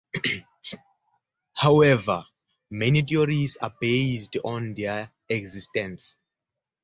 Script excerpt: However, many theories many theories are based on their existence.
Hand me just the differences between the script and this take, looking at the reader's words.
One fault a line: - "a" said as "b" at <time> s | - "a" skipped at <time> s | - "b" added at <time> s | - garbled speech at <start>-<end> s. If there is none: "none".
- "many theories" skipped at 3.5 s